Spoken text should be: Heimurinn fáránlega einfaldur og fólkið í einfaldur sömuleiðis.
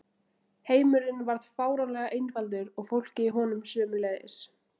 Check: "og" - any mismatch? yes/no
no